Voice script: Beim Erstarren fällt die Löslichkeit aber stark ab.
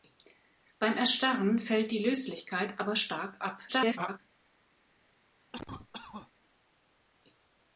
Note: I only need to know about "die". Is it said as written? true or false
true